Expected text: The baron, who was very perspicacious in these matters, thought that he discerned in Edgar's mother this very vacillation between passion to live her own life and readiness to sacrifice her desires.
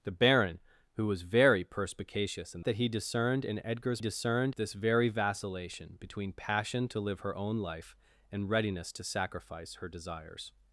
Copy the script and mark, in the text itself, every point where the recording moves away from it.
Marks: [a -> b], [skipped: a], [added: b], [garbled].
The baron, who was very perspicacious in [skipped: these matters, thought] that he discerned in Edgar's [mother -> discerned] this very vacillation between passion to live her own life and readiness to sacrifice her desires.